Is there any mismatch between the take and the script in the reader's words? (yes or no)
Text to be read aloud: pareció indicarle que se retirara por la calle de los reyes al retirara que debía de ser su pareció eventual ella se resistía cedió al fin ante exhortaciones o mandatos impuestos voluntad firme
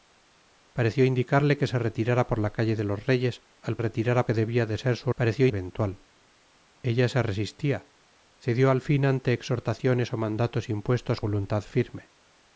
no